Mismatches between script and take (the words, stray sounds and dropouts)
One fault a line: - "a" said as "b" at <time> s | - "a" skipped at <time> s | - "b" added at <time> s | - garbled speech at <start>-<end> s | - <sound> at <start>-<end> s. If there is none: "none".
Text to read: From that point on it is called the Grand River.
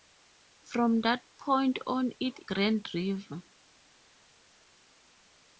- "is called the" skipped at 2.4 s